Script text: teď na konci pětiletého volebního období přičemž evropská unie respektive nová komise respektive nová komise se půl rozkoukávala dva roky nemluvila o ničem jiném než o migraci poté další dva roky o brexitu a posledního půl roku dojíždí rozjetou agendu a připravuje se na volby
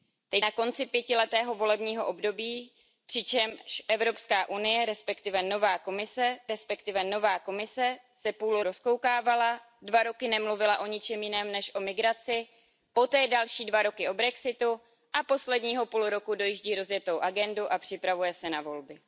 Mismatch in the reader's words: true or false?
false